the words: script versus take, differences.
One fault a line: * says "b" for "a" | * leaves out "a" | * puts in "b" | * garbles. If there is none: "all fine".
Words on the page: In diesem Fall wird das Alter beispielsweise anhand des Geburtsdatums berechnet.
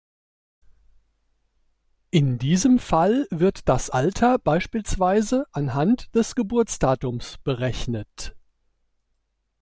all fine